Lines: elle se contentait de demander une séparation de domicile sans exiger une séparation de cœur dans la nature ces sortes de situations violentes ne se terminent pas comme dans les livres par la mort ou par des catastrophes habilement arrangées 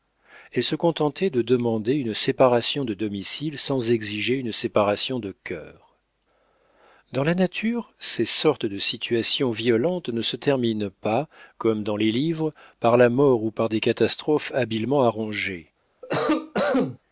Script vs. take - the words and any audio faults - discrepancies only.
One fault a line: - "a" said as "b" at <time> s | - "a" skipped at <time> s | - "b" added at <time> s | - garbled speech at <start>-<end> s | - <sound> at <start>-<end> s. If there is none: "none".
- cough at 16.0-17.0 s